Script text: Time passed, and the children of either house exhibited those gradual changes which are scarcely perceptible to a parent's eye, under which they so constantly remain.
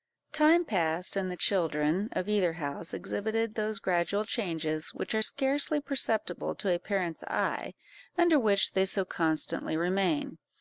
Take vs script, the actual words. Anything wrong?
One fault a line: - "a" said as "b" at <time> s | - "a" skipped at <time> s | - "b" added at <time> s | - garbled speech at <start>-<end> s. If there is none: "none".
none